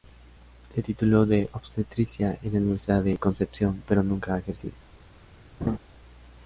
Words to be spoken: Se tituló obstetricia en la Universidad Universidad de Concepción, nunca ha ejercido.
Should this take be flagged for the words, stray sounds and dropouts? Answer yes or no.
yes